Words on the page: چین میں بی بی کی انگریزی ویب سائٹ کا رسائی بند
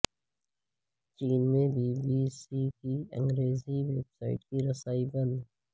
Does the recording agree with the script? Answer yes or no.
no